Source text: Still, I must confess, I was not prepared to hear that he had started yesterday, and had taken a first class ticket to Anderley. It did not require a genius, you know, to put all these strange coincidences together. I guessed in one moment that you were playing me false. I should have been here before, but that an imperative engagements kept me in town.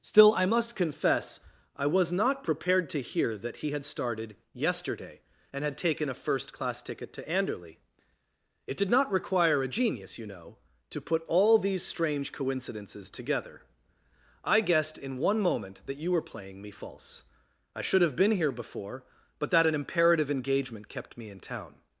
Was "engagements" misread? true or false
true